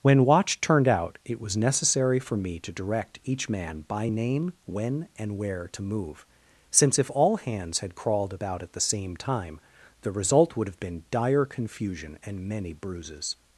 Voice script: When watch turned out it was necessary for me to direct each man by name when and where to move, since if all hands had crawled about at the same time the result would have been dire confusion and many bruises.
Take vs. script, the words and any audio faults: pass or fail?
pass